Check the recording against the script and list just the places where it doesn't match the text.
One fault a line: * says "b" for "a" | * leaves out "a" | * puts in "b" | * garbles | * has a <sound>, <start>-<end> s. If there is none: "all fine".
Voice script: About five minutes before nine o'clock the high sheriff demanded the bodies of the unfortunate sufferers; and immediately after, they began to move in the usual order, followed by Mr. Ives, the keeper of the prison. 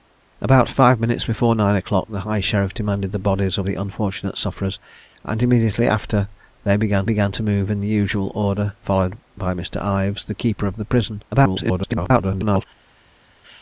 * puts in "began"
* garbles